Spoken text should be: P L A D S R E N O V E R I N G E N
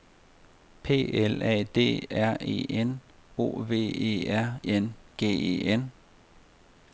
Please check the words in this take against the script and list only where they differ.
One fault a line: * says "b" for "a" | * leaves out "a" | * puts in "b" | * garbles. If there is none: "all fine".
* leaves out "S"
* leaves out "I"